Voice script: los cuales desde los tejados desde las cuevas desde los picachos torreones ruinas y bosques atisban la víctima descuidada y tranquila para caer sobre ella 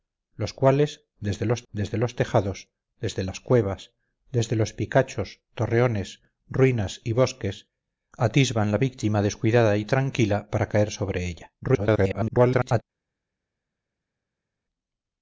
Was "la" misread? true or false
false